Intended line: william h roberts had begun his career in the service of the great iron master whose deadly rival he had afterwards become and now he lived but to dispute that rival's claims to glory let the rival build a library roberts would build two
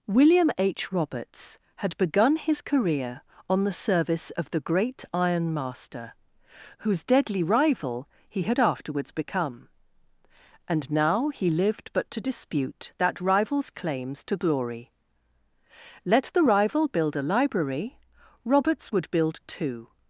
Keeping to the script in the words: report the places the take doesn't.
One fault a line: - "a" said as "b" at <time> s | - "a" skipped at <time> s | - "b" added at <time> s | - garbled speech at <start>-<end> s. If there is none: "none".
- "in" said as "on" at 3.5 s